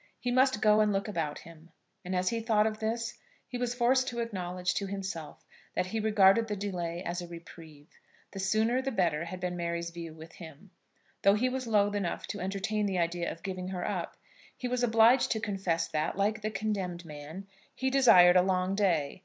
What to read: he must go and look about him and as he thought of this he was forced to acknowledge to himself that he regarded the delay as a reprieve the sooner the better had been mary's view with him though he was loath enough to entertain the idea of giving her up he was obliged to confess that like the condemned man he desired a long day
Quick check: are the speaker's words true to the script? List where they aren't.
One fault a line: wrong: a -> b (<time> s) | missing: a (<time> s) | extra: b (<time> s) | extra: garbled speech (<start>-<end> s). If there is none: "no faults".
no faults